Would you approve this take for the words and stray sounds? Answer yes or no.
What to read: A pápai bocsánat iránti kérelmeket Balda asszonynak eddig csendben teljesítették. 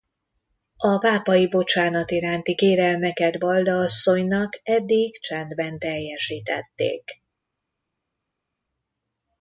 yes